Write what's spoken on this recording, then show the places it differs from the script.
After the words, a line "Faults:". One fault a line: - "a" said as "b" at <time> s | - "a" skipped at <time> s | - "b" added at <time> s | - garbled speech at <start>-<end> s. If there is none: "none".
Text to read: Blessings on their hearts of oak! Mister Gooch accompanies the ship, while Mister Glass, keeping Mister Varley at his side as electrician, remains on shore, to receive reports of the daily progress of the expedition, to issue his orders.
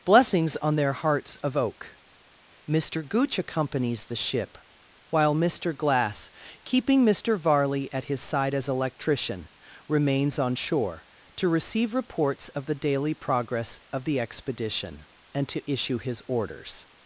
Blessings on their hearts of oak! Mister Gooch accompanies the ship, while Mister Glass, keeping Mister Varley at his side as electrician, remains on shore, to receive reports of the daily progress of the expedition, and to issue his orders.
Faults:
- "and" added at 15.3 s